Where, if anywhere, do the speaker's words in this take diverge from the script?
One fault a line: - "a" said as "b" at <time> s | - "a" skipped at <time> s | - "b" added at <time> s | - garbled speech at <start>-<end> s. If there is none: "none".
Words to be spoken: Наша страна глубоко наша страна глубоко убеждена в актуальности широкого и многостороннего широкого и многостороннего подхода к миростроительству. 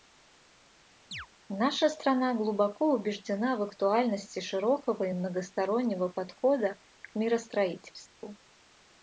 - "наша страна глубоко" skipped at 2.9 s
- "широкого и многостороннего" skipped at 6.1 s